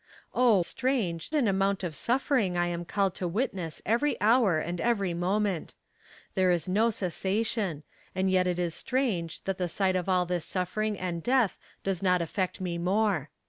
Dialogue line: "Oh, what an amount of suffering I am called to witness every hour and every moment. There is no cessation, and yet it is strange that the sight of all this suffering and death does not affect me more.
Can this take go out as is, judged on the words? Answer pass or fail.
fail